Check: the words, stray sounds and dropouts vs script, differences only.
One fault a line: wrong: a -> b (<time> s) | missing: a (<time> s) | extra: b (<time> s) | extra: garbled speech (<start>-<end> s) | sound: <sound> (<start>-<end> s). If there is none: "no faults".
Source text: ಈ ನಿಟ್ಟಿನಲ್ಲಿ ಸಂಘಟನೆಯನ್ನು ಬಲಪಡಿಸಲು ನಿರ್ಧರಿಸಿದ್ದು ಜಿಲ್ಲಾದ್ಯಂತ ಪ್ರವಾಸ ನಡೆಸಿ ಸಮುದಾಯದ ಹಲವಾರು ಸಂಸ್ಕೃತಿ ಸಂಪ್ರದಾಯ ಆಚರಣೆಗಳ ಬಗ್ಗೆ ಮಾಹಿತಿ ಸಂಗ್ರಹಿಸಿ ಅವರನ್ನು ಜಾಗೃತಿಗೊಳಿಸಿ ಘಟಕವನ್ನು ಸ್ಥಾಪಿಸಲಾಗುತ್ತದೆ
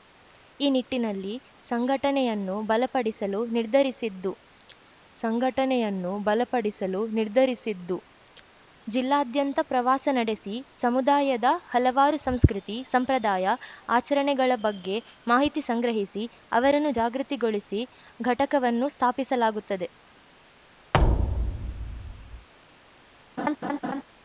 extra: ಸಂಘಟನೆಯನ್ನು ಬಲಪಡಿಸಲು ನಿರ್ಧರಿಸಿದ್ದು (5.2 s)
sound: thud (20.9-22.5 s)
sound: laugh (23.4-24.0 s)